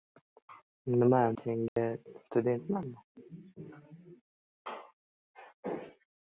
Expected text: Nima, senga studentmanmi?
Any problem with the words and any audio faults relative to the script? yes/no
yes